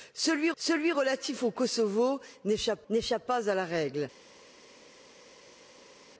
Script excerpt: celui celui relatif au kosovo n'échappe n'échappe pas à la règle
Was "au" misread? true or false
false